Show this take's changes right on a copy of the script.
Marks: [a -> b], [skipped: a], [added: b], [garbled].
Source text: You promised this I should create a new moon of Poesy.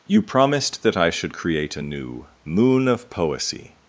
You promised [this -> that] I should create a new moon of Poesy.